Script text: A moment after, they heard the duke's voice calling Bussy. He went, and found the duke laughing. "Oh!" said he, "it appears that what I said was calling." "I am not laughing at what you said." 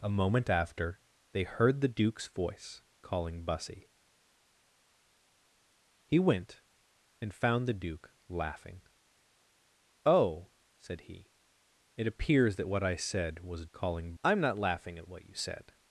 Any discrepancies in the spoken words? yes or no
no